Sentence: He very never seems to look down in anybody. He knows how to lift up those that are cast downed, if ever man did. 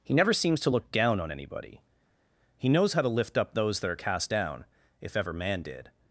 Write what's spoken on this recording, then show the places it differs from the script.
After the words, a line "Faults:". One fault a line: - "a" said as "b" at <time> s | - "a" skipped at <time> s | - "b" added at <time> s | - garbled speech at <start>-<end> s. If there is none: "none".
He never seems to look down on anybody. He knows how to lift up those that are cast down, if ever man did.
Faults:
- "very" skipped at 0.1 s
- "in" said as "on" at 1.2 s
- "downed" said as "down" at 4.3 s